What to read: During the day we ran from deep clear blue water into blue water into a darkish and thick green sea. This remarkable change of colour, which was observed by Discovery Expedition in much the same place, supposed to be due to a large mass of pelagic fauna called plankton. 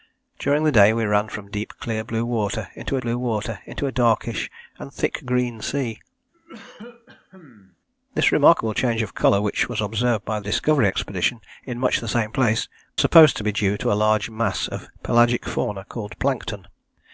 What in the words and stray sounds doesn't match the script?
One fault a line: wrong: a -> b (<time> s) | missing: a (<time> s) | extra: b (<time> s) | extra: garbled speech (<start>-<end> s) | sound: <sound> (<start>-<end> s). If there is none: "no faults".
sound: cough (6.3-7.8 s)